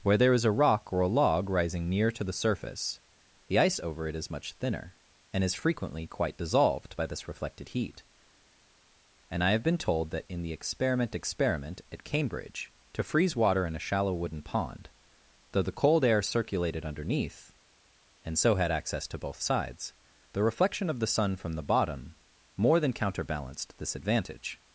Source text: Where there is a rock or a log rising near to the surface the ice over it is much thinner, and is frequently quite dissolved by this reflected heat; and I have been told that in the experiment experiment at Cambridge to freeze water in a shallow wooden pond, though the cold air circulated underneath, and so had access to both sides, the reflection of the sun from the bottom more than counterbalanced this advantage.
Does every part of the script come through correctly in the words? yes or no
yes